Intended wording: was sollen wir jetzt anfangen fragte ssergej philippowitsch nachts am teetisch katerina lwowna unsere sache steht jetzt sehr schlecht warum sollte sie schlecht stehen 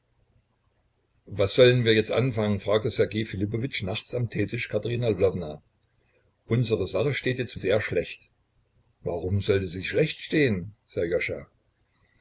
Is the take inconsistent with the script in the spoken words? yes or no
no